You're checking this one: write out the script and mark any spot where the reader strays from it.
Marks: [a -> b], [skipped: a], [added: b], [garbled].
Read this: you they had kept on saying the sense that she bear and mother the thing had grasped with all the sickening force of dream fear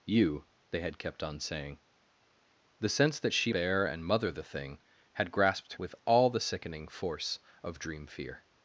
you they had kept on saying the sense that she bear and mother the thing had grasped with all the sickening force of dream fear